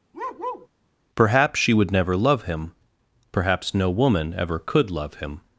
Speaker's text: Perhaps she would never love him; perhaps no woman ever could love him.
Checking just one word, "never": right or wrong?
right